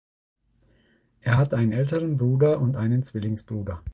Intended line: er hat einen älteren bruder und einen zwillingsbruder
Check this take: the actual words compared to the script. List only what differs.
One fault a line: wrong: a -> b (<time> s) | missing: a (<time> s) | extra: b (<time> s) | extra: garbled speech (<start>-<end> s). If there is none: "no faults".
no faults